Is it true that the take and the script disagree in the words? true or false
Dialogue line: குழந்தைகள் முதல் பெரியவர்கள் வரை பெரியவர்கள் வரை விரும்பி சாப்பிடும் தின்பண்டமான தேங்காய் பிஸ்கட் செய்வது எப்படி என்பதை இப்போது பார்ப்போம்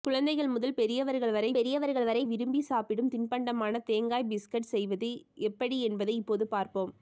false